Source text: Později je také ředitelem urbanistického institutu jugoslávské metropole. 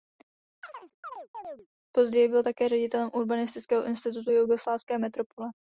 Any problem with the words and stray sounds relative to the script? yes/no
yes